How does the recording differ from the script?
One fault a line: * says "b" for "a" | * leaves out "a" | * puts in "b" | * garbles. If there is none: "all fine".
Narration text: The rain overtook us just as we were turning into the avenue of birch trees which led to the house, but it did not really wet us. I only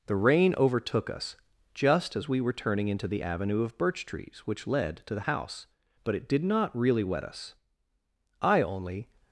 all fine